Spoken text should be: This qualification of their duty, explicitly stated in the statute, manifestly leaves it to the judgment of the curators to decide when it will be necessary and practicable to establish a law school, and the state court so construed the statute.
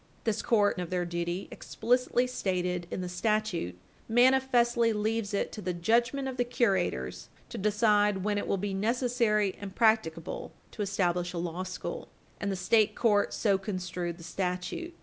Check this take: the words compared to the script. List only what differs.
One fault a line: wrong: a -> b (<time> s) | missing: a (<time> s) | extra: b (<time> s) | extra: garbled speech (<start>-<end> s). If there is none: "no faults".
wrong: qualification -> court (0.4 s)